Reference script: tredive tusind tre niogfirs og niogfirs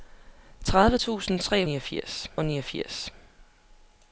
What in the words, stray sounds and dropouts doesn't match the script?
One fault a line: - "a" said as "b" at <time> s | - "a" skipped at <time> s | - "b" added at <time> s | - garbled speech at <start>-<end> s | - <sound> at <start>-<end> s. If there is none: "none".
none